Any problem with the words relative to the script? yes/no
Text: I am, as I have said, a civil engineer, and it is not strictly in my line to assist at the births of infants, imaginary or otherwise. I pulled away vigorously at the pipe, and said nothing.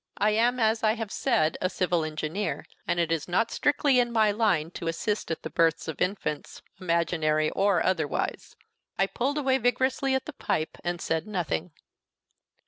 no